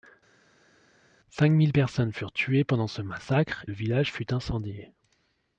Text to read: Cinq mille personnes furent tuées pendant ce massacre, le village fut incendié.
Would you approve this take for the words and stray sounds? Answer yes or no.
yes